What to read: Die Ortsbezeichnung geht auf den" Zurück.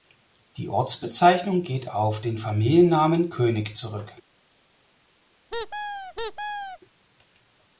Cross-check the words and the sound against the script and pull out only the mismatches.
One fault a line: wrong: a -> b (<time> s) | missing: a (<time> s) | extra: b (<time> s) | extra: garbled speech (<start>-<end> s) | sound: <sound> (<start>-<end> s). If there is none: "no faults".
extra: Familiennamen König (2.4 s)
sound: squeak (5.5-6.8 s)